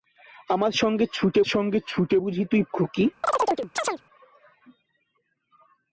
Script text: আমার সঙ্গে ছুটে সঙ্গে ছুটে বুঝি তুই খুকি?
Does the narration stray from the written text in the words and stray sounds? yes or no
yes